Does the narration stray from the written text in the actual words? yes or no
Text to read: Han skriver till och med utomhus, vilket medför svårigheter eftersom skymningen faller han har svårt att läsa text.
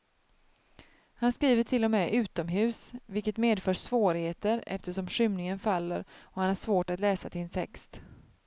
yes